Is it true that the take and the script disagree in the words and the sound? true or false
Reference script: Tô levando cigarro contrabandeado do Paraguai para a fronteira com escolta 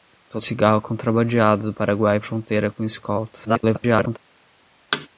true